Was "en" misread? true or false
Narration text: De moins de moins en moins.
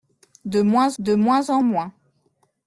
false